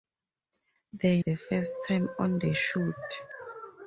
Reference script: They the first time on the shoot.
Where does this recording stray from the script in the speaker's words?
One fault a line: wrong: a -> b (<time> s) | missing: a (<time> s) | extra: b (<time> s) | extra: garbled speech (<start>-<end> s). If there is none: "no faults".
no faults